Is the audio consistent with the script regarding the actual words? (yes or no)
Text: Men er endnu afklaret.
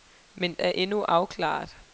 yes